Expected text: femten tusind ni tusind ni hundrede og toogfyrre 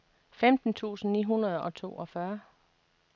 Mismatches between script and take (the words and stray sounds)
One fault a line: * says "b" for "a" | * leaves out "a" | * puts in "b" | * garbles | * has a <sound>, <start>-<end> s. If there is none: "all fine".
* leaves out "tusind ni"